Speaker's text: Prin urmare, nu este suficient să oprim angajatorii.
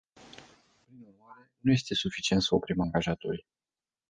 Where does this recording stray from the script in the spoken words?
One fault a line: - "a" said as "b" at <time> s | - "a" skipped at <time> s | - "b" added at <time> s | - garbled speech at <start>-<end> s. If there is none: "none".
none